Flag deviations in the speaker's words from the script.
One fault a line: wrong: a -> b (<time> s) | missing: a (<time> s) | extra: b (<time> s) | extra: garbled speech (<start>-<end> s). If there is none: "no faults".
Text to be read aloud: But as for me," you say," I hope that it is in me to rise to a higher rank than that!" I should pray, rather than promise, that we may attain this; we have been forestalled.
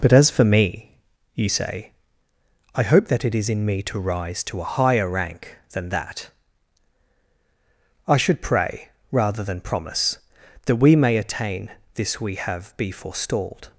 wrong: been -> be (12.8 s)